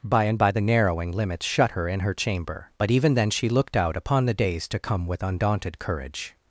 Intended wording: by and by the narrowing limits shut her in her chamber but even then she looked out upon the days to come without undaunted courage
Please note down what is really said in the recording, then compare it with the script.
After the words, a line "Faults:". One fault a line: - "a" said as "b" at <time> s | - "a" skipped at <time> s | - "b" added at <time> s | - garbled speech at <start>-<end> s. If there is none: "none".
by and by the narrowing limits shut her in her chamber but even then she looked out upon the days to come with undaunted courage
Faults:
- "without" said as "with" at 5.0 s